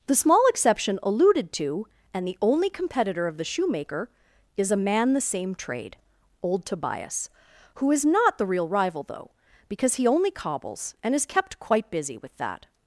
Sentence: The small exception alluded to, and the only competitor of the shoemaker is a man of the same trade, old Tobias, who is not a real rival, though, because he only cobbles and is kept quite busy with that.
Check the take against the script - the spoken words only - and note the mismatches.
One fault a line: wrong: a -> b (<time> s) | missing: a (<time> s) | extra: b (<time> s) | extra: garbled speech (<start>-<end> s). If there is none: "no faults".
missing: of (5.1 s)
wrong: a -> the (8.4 s)